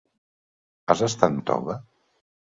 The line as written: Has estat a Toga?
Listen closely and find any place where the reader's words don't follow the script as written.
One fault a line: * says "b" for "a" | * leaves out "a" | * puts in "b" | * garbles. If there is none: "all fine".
all fine